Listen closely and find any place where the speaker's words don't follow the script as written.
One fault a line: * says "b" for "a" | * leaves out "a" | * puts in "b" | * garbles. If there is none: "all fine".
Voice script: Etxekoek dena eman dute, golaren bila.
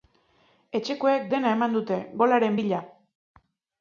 all fine